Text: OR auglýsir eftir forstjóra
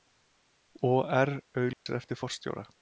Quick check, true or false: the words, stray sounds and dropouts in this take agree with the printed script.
false